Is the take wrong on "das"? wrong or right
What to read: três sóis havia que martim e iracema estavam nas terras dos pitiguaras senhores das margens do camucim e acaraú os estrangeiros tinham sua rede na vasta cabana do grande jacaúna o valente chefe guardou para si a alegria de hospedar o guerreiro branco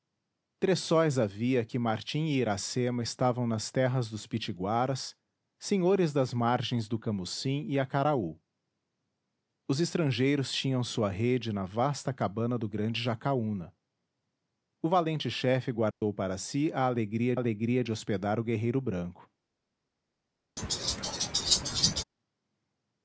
right